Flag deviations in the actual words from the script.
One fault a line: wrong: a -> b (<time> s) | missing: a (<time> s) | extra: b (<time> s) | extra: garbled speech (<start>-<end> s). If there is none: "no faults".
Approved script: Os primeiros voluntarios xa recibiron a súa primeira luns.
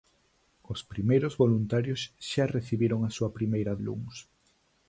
no faults